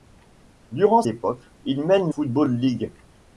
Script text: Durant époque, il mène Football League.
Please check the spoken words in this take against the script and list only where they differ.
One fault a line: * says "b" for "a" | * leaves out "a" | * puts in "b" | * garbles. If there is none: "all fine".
all fine